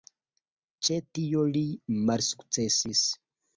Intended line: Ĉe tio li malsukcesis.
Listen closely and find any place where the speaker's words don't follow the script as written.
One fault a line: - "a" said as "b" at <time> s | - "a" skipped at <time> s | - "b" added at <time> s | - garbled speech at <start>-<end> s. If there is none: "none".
none